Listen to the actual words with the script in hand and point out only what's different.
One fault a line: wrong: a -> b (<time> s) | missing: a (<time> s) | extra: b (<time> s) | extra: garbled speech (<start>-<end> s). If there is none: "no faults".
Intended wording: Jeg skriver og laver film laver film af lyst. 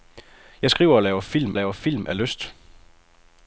no faults